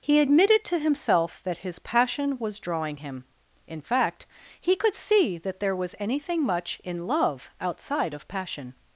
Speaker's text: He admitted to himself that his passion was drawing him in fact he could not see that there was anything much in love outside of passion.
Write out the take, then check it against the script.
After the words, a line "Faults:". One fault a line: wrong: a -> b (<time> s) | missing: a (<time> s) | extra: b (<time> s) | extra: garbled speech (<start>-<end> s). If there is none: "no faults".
He admitted to himself that his passion was drawing him in fact he could see that there was anything much in love outside of passion.
Faults:
missing: not (4.9 s)